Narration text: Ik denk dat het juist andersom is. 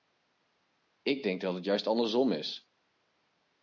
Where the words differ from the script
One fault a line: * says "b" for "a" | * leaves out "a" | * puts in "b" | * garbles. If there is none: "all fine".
all fine